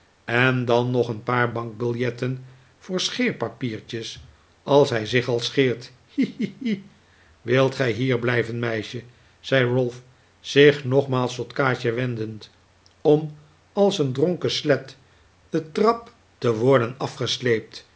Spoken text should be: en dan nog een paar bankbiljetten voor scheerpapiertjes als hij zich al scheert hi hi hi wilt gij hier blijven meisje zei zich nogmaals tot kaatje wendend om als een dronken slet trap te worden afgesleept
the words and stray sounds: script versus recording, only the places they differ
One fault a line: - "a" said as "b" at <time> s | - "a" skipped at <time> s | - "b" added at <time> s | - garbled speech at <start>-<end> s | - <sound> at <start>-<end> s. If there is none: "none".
- "ralph" added at 9.7 s
- "de" added at 15.5 s